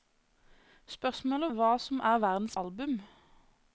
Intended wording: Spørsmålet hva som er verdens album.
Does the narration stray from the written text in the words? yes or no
no